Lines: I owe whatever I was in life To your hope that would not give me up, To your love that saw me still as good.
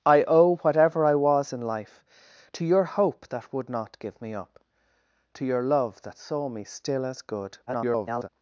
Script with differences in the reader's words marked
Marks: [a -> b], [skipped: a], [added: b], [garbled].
I owe whatever I was in life To your hope that would not give me up, To your love that saw me still as good. [garbled]